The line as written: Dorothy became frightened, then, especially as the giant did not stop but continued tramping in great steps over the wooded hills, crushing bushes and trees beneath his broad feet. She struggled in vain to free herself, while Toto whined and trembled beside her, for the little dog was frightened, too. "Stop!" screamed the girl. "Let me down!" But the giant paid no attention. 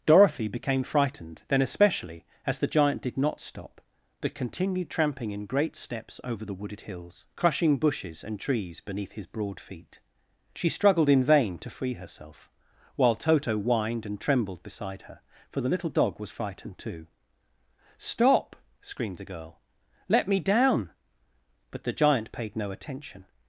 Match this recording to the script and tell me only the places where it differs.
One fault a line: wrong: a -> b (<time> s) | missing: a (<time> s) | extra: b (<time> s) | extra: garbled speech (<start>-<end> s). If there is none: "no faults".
no faults